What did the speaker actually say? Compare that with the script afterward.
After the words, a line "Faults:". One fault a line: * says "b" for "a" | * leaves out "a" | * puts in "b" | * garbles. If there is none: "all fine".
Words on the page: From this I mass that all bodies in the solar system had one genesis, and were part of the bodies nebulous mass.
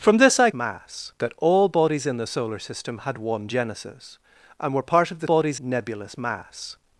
From this I mass that all bodies in the solar system had one genesis, and were part of the bodies nebulous mass.
Faults:
all fine